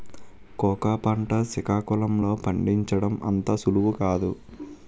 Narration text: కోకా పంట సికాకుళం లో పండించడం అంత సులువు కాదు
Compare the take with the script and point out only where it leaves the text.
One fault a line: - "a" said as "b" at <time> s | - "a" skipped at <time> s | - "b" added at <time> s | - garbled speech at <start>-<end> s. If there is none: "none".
none